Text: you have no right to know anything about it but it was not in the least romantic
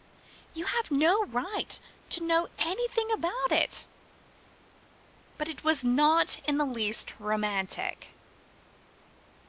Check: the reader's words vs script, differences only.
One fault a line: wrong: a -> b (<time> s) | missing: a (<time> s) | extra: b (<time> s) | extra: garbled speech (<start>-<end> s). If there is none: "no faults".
no faults